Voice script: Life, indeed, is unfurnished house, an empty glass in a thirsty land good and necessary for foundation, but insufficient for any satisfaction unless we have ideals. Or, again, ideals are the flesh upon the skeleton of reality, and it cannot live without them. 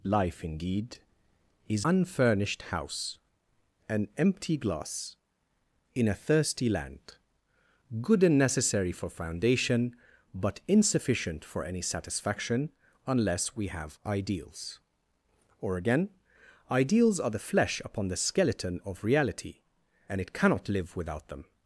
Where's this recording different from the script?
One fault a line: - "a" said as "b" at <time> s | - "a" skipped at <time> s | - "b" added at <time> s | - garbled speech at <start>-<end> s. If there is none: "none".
none